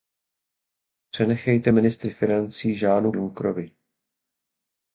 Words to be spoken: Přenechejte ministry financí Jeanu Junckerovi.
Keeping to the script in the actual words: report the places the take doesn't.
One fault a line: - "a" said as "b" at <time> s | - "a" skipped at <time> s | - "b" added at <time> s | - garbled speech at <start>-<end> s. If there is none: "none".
none